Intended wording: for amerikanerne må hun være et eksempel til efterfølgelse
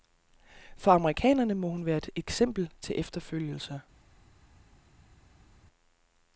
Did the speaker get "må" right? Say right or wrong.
right